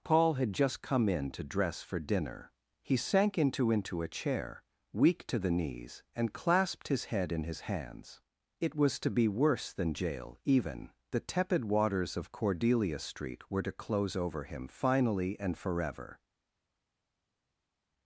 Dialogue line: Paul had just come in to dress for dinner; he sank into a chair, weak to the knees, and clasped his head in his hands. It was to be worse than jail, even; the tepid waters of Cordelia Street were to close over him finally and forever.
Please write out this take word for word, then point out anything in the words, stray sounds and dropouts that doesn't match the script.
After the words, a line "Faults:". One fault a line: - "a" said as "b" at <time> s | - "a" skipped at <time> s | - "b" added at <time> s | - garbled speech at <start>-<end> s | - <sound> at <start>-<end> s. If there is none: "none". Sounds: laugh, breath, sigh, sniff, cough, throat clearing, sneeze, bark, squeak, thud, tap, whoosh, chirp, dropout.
Paul had just come in to dress for dinner; he sank into into a chair, weak to the knees, and clasped his head in his hands. It was to be worse than jail, even; the tepid waters of Cordelia Street were to close over him finally and forever.
Faults:
- "into" added at 3.7 s